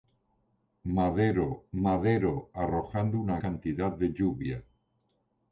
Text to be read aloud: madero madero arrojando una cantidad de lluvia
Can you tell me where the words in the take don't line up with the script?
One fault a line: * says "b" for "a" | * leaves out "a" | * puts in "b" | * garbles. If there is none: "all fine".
all fine